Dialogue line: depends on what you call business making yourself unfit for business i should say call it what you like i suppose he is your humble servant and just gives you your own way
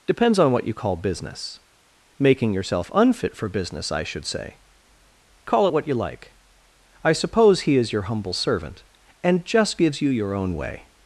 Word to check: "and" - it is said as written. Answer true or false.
true